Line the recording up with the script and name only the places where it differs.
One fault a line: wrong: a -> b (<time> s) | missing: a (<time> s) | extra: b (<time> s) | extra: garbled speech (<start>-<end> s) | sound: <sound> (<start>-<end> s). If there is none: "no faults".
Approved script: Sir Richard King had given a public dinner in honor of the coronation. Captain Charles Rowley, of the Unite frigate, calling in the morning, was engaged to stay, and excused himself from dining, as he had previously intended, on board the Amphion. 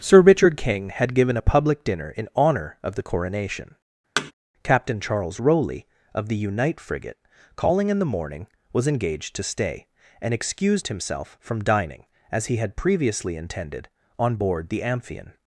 sound: thud (4.2-4.3 s)